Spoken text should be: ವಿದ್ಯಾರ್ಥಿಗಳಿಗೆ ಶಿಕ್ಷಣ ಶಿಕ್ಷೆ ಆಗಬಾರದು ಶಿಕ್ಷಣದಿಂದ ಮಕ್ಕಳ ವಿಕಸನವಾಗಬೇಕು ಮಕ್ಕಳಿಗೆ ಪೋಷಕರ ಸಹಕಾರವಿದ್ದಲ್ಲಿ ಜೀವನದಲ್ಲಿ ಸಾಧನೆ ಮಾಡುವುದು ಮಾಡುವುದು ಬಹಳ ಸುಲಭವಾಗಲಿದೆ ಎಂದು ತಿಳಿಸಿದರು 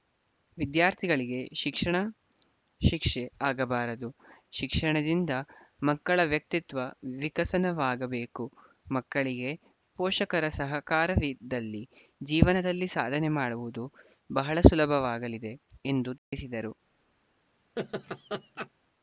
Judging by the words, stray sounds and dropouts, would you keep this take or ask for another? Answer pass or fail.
fail